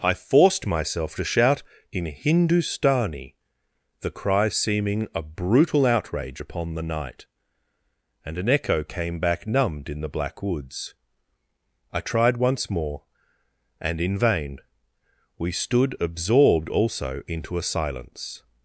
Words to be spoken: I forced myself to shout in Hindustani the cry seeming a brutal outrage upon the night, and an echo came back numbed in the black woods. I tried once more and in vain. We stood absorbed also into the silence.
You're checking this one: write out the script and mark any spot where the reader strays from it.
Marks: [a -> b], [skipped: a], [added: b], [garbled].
I forced myself to shout in Hindustani the cry seeming a brutal outrage upon the night, and an echo came back numbed in the black woods. I tried once more and in vain. We stood absorbed also into [the -> a] silence.